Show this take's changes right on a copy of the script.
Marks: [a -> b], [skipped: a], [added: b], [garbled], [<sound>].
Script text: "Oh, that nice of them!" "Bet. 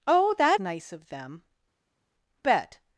"Oh, that nice of them!" "Bet.